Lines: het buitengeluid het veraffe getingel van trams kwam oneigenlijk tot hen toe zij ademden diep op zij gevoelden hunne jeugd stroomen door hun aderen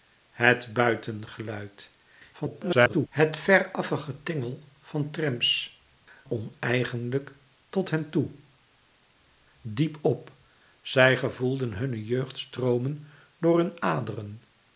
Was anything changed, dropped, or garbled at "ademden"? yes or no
yes